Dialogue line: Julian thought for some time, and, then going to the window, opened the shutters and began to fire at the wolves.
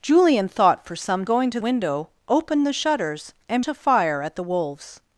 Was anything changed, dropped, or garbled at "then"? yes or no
yes